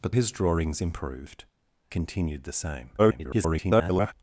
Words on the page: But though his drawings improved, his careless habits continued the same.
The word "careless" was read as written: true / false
false